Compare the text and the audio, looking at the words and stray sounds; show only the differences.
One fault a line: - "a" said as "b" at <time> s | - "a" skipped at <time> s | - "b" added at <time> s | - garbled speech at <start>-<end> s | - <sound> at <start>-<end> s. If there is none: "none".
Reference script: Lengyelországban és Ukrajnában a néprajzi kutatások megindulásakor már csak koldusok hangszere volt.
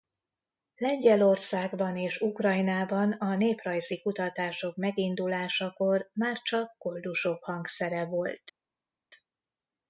none